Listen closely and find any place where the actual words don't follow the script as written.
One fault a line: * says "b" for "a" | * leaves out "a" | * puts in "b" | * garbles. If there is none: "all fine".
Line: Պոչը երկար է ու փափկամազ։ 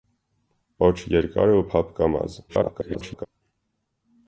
* garbles